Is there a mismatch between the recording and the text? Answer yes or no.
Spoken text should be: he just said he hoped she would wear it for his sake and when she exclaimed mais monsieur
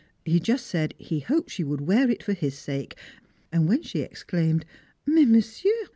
no